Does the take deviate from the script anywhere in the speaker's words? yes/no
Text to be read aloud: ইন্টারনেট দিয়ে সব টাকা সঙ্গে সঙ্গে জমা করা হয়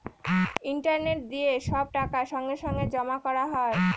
no